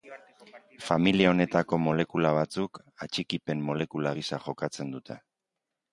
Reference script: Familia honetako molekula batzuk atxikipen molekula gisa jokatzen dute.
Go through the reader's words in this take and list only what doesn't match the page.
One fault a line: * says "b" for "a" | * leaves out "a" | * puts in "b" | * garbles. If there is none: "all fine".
all fine